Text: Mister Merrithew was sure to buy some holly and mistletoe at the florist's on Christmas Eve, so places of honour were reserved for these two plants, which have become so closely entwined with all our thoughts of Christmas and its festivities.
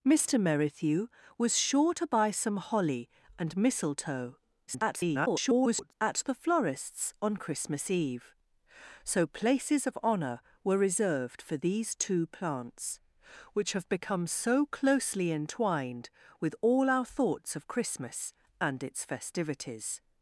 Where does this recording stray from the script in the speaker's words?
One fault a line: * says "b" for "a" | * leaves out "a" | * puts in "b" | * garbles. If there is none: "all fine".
* garbles